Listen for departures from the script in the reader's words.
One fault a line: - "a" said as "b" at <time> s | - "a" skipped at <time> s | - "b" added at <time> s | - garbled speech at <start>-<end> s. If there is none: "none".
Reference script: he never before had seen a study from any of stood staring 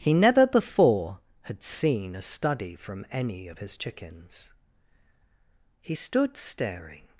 - "his chickens he" added at 3.6 s